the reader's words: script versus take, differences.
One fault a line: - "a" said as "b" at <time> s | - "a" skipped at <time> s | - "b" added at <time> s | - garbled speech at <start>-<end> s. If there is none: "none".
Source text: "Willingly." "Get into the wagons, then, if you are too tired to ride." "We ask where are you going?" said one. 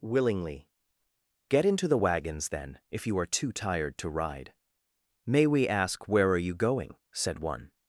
- "May" added at 5.3 s